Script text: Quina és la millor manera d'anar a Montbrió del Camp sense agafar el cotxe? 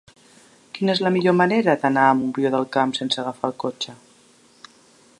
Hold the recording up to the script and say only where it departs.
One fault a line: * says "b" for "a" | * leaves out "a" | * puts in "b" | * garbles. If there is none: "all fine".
all fine